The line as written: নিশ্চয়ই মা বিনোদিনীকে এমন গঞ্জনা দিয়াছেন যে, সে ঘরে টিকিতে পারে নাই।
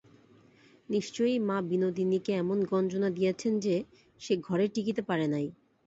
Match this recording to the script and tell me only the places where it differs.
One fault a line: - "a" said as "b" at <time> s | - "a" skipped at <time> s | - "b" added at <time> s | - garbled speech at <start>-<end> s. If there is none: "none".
none